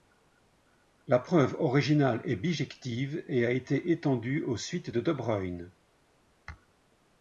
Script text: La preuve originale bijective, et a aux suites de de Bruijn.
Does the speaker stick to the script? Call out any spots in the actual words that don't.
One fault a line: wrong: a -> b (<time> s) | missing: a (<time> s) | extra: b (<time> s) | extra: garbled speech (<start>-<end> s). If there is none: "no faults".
extra: est (2.2 s)
extra: été étendue (3.5 s)